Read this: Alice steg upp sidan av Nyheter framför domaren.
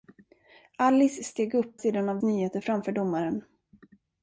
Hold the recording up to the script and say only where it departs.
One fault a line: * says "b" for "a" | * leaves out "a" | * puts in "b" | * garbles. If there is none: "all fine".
all fine